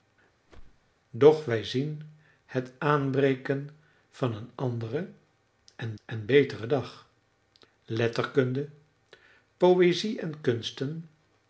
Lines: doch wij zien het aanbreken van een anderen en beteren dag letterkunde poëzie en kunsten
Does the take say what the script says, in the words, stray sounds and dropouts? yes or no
no